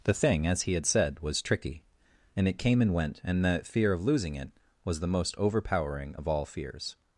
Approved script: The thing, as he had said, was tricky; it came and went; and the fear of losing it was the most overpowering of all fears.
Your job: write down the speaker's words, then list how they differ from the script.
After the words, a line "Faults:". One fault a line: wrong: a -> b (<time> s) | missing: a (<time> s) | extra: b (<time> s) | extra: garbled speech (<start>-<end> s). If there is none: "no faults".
The thing, as he had said, was tricky; and it came and went; and the fear of losing it was the most overpowering of all fears.
Faults:
extra: and (2.4 s)